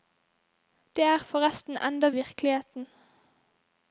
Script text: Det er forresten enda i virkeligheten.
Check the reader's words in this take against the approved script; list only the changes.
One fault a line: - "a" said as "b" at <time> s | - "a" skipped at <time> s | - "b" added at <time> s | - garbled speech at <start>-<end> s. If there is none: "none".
none